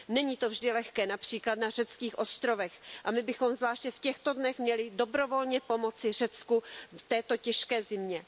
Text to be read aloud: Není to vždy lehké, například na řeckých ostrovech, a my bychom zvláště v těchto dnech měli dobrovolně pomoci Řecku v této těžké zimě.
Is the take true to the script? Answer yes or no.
yes